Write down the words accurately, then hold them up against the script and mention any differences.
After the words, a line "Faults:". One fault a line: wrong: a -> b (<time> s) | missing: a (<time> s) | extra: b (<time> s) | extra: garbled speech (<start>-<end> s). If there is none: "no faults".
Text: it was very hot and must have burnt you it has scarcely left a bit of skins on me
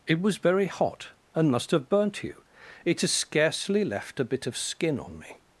it was very hot and must have burnt you it has scarcely left a bit of skin on me
Faults:
wrong: skins -> skin (4.6 s)